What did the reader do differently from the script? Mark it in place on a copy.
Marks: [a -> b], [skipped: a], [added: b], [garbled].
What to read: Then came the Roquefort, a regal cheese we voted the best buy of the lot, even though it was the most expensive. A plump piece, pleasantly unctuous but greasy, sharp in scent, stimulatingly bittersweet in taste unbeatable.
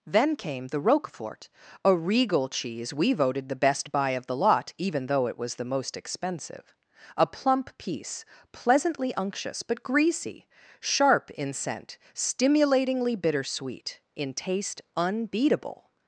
Then came the Roquefort, a regal cheese we voted the best buy of the lot, even though it was the most expensive. A plump piece, pleasantly unctuous but greasy, sharp in scent, stimulatingly bittersweet in taste unbeatable.